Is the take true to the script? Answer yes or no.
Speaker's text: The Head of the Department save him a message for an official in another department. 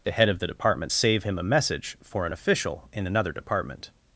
yes